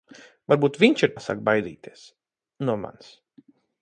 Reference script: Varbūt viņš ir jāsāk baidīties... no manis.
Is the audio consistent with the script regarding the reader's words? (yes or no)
yes